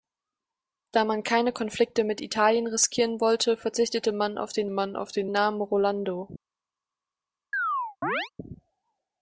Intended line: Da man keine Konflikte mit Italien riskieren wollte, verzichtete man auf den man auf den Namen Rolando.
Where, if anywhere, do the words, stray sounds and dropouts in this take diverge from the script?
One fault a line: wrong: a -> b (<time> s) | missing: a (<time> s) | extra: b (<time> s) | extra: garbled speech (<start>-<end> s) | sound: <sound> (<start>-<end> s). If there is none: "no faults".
sound: chirp (7.5-8.3 s)